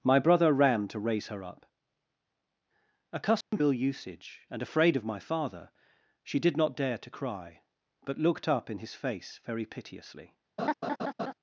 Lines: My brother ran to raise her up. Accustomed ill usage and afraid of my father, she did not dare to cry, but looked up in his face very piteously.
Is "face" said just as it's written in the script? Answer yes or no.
yes